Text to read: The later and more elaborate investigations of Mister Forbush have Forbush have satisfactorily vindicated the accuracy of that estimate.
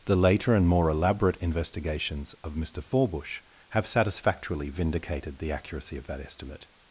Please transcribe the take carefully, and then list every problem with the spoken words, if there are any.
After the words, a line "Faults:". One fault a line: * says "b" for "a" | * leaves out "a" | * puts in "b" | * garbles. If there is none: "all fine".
The later and more elaborate investigations of Mister Forbush have satisfactorily vindicated the accuracy of that estimate.
Faults:
* leaves out "Forbush have"